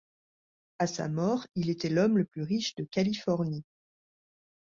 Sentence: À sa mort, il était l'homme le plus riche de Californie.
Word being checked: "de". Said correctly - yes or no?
yes